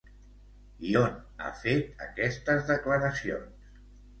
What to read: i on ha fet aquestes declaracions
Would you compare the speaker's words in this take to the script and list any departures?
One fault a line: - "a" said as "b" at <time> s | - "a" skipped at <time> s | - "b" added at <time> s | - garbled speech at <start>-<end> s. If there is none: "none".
none